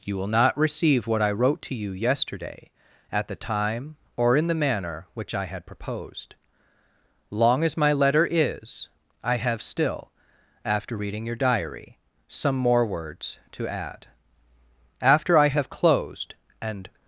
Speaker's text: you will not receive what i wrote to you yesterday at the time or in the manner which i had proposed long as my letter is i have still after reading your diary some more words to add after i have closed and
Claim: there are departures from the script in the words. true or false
false